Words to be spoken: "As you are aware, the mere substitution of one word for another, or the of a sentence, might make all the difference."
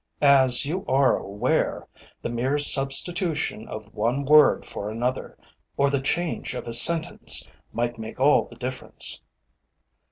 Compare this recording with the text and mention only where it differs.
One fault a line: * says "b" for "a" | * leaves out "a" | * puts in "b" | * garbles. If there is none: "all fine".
* puts in "change"